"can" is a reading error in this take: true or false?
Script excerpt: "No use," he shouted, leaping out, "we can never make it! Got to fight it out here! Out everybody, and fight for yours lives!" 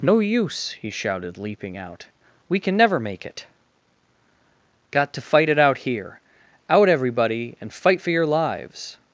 false